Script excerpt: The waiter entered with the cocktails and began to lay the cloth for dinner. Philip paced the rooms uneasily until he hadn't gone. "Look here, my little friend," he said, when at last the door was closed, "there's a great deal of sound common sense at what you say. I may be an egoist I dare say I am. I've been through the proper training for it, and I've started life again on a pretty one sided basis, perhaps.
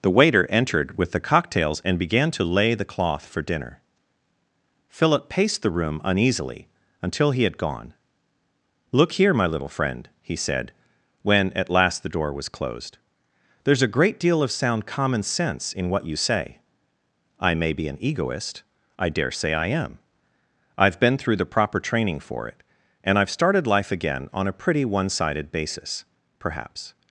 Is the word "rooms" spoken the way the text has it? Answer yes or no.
no